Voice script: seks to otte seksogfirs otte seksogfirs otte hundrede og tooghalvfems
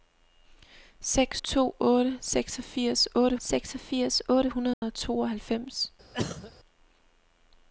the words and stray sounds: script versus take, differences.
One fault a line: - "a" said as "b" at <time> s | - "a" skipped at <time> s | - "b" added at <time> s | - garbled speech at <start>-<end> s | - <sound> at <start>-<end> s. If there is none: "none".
- dropout at 4.7-4.8 s
- cough at 6.1-6.5 s